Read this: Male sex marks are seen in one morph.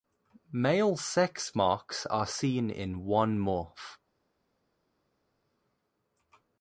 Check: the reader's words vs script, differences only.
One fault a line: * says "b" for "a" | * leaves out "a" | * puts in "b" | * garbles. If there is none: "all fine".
all fine